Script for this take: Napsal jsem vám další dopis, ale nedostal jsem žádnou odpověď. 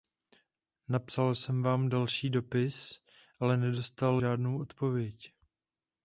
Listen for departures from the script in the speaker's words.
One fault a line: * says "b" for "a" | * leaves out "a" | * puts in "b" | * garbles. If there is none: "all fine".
* leaves out "jsem"